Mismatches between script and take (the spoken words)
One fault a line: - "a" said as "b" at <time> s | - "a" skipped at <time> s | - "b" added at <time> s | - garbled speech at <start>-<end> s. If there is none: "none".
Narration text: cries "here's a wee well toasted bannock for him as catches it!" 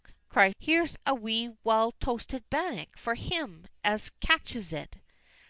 none